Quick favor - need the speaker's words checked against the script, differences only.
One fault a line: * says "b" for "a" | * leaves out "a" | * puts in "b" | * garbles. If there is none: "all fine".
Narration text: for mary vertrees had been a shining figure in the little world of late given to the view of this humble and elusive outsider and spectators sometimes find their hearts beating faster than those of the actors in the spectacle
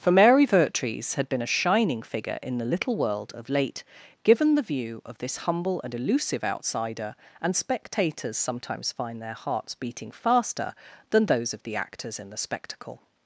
* leaves out "to"